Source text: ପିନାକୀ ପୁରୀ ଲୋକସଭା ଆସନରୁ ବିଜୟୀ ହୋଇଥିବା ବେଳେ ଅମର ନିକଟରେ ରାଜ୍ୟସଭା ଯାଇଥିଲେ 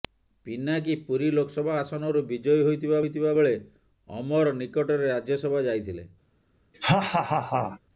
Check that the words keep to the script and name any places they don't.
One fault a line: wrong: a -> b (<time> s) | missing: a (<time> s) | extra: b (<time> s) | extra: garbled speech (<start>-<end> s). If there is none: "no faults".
extra: ହୋଇଥିବା (3.0 s)